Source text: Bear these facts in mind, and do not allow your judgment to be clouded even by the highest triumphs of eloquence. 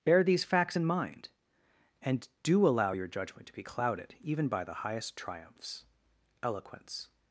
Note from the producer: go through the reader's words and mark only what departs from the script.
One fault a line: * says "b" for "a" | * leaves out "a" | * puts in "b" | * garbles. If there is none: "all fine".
* leaves out "not"
* leaves out "of"